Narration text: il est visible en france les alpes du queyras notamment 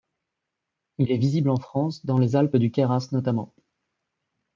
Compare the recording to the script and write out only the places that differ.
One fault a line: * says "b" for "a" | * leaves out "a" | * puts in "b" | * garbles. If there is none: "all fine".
* puts in "dans"